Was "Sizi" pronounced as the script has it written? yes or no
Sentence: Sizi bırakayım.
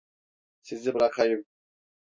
yes